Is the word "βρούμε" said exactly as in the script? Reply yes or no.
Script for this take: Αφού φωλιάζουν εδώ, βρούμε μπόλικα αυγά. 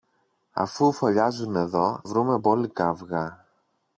yes